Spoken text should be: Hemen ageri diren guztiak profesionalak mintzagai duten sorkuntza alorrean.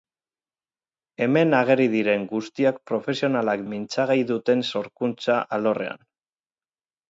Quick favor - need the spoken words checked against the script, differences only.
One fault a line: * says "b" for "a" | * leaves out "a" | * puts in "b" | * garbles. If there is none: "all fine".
all fine